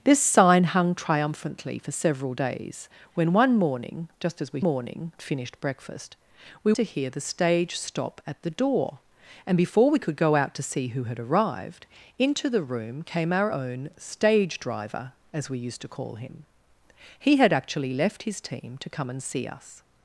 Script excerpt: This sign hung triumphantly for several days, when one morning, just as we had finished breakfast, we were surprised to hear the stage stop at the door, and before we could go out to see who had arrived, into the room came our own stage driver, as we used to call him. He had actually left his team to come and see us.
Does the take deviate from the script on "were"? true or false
true